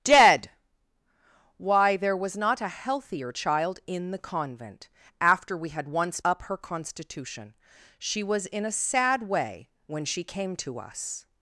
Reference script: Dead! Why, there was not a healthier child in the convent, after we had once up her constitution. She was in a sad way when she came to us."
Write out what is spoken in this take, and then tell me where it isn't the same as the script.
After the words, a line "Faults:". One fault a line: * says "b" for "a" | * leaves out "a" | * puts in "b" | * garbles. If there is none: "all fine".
Dead! Why, there was not a healthier child in the convent, after we had once up her constitution. She was in a sad way when she came to us."
Faults:
all fine